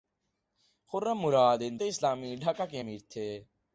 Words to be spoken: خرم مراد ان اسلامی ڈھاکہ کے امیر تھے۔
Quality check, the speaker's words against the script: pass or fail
pass